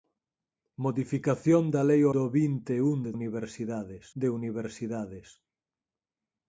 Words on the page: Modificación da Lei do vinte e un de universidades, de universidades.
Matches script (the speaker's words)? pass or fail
pass